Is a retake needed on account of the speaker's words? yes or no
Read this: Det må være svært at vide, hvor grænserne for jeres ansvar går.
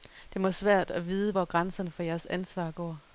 no